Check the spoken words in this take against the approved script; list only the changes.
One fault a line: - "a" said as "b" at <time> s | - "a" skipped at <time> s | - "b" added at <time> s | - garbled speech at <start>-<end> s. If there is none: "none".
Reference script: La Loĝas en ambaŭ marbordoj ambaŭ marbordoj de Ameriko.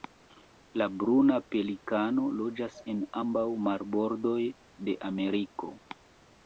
- "Bruna pelikano" added at 1.0 s
- "ambaŭ marbordoj" skipped at 4.4 s